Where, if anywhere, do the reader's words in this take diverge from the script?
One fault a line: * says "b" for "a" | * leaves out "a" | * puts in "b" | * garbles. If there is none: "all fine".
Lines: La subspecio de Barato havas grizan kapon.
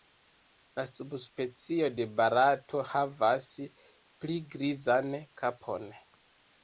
* puts in "pli"